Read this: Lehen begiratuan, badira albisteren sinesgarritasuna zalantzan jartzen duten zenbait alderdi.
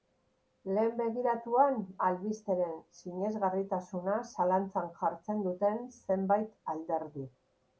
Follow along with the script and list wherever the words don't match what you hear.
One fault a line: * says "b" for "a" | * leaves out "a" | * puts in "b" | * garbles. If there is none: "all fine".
* leaves out "badira"